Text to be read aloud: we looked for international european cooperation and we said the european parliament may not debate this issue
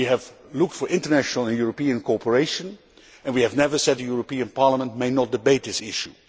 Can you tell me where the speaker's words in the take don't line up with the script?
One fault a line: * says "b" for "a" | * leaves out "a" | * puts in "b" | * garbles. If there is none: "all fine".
* puts in "have"
* puts in "and"
* puts in "have never"